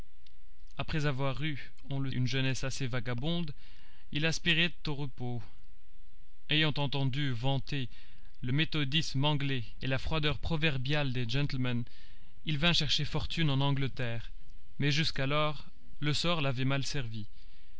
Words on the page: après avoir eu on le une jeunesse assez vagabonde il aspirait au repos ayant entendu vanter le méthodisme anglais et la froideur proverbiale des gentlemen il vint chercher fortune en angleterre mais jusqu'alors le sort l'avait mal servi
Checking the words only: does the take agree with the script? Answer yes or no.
yes